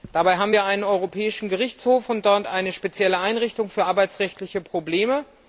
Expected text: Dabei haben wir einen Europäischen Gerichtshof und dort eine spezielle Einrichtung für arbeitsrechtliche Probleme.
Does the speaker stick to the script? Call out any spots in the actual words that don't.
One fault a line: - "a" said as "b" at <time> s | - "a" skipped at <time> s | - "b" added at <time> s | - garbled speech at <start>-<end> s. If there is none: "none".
none